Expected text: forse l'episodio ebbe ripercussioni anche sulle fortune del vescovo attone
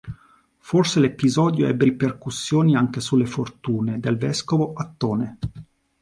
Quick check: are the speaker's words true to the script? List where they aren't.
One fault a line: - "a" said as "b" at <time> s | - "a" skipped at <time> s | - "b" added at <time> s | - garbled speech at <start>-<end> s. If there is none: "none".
none